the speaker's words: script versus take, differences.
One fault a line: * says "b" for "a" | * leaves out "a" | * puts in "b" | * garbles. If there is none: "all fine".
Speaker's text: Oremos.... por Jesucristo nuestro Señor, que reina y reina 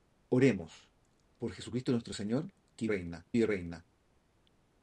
all fine